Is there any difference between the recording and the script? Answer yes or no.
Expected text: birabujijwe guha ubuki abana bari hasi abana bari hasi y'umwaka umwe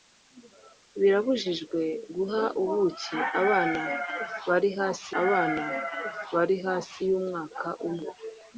no